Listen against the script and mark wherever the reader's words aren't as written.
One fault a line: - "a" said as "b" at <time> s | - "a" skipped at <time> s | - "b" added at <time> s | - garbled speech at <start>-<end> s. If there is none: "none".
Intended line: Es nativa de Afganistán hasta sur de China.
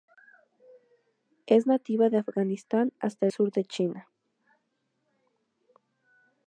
none